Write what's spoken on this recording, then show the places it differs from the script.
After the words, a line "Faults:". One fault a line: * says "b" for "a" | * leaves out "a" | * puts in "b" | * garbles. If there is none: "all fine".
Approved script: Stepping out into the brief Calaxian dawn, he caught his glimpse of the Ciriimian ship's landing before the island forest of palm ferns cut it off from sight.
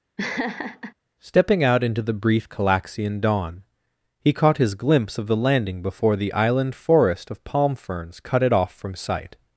Stepping out into the brief Calaxian dawn, he caught his glimpse of the landing before the island forest of palm ferns cut it off from sight.
Faults:
* leaves out "Ciriimian ship's"